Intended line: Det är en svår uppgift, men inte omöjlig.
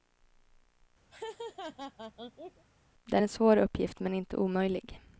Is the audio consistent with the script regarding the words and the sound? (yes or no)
no